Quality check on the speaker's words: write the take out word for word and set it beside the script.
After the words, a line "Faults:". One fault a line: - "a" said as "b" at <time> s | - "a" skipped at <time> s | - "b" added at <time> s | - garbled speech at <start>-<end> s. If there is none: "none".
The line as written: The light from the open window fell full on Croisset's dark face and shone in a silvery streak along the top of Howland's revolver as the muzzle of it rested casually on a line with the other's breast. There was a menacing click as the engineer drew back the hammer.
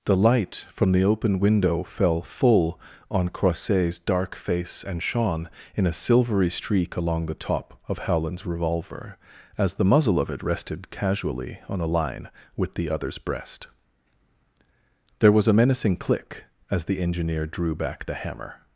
The light from the open window fell full on Croisset's dark face and shone in a silvery streak along the top of Howland's revolver as the muzzle of it rested casually on a line with the other's breast. There was a menacing click as the engineer drew back the hammer.
Faults:
none